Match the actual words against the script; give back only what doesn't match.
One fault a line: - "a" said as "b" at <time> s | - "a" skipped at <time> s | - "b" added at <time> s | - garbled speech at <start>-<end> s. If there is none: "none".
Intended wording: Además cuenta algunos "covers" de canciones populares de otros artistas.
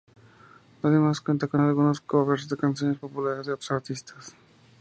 - "con" added at 1.4 s